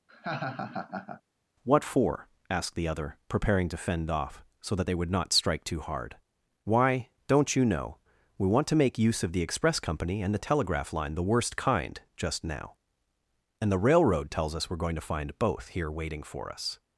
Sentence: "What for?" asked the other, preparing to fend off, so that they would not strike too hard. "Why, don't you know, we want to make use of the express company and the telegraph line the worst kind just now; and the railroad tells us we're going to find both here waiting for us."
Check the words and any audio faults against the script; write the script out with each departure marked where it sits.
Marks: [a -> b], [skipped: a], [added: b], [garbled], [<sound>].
[laugh] "What for?" asked the other, preparing to fend off, so that they would not strike too hard. "Why, don't you know, we want to make use of the express company and the telegraph line the worst kind just now; and the railroad tells us we're going to find both here waiting for us."